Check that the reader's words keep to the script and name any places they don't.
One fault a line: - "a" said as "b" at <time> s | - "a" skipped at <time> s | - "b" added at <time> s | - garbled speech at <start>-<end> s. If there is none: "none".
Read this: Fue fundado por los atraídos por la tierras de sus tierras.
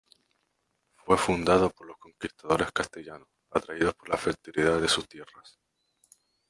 - "conquistadores castellanos" added at 2.0 s
- "tierras" said as "fertilidad" at 4.2 s